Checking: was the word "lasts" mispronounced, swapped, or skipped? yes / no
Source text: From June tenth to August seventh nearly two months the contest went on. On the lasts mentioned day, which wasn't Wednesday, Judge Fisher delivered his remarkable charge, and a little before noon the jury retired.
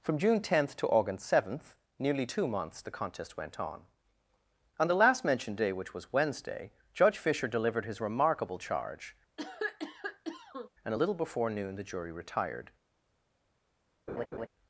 yes